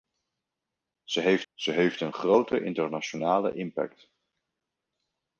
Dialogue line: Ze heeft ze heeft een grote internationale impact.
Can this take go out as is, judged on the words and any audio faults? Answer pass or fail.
pass